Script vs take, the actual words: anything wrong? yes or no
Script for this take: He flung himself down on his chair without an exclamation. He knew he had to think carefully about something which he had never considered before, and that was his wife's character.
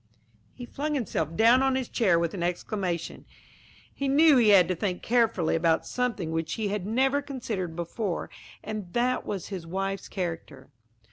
yes